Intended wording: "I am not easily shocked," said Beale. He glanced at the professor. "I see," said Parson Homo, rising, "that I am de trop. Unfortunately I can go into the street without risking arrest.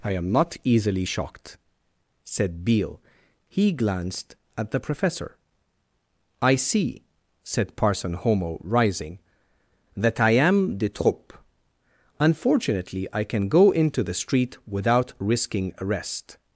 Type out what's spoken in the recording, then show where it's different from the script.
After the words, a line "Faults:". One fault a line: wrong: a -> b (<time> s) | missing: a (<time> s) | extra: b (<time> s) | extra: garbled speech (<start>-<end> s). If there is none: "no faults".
"I am not easily shocked," said Beale. He glanced at the professor. "I see," said Parson Homo, rising, "that I am de trop. Unfortunately I can go into the street without risking arrest.
Faults:
no faults